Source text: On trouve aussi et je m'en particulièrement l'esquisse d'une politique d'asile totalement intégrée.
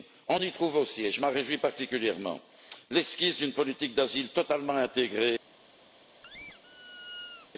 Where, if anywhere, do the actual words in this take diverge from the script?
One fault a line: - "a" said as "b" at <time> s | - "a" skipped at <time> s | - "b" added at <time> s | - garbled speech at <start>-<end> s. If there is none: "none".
- "y" added at 0.4 s
- "réjouis" added at 1.3 s